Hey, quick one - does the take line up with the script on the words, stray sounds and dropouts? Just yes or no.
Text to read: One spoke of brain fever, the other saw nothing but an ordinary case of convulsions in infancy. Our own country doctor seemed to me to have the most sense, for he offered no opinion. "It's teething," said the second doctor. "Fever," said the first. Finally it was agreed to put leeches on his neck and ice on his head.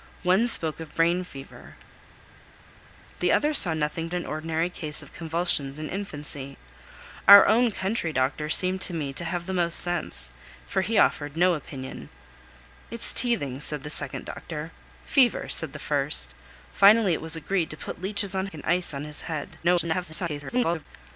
no